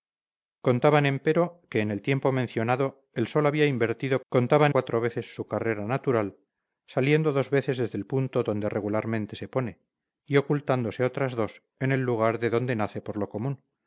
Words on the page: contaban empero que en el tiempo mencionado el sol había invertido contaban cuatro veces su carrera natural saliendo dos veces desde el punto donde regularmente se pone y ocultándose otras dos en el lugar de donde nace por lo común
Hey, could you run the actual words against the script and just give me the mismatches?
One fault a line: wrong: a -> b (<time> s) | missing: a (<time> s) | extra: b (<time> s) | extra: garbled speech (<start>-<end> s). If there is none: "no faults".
no faults